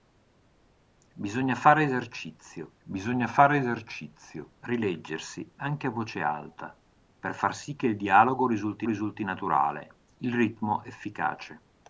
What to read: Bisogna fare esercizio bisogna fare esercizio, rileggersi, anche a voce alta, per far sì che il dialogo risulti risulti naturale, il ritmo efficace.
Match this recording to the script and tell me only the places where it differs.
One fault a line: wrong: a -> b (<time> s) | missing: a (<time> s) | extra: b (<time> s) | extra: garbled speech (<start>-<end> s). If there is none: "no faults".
no faults